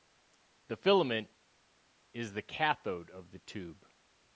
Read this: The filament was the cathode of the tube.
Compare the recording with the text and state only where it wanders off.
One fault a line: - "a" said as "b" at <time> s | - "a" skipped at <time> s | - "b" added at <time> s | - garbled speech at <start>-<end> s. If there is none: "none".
- "was" said as "is" at 2.1 s